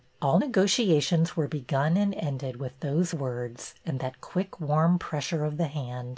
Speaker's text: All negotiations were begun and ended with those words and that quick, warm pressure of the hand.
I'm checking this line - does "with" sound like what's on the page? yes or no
yes